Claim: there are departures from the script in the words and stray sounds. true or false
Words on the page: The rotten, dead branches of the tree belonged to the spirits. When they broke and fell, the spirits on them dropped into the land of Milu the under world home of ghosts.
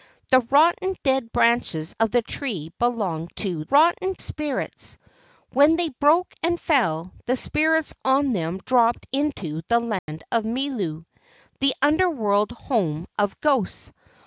true